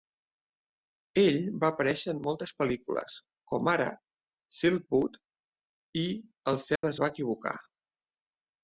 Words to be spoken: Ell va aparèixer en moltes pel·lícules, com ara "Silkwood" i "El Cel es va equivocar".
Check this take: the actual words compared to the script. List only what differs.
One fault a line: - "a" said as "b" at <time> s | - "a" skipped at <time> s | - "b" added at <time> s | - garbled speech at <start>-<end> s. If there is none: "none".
none